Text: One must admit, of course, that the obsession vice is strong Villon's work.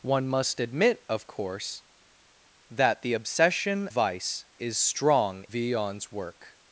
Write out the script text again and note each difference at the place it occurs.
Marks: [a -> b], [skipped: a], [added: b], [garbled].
One must admit, of course, that the obsession vice is strong Villon's work.